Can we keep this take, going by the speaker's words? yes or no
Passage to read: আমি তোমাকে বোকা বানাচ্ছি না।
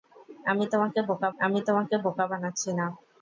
no